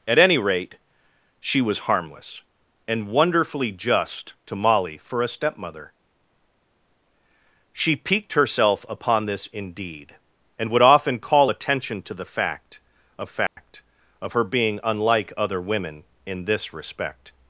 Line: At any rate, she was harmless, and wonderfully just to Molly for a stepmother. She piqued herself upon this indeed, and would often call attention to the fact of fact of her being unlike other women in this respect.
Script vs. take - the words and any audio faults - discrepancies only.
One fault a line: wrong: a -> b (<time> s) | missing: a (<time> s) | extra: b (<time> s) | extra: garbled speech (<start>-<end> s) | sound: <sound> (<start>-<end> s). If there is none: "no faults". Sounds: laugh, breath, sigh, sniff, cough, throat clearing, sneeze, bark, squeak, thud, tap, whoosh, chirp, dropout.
sound: dropout (13.5-13.6 s)